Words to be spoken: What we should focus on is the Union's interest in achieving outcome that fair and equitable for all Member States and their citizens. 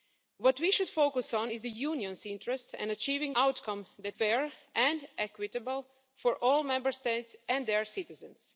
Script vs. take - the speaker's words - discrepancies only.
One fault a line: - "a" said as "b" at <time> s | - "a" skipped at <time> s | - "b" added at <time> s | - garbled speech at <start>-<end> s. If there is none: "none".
none